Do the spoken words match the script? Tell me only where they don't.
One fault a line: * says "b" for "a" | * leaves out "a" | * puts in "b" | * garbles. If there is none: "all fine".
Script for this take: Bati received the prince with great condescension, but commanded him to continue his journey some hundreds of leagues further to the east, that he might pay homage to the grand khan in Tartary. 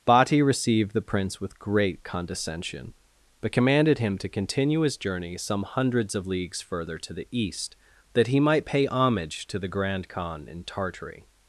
all fine